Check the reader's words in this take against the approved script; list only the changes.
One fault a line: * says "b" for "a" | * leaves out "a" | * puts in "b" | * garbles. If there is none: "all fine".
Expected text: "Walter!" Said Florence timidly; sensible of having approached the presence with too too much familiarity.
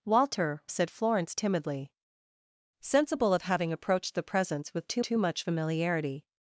all fine